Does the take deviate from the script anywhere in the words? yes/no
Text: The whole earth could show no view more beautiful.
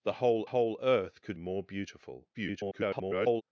yes